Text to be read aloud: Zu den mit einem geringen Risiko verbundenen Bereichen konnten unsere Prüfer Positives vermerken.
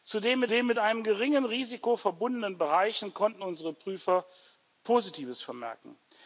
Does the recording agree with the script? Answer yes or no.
no